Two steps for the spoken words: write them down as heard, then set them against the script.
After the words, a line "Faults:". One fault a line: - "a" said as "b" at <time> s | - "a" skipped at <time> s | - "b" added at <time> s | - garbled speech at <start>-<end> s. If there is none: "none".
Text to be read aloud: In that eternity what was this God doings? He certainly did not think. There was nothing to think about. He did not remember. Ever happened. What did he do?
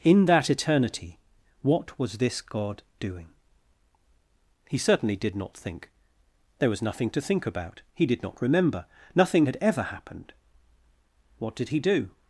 In that eternity what was this God doing? He certainly did not think. There was nothing to think about. He did not remember. Nothing had ever happened. What did he do?
Faults:
- "doings" said as "doing" at 3.0 s
- "Nothing had" added at 9.1 s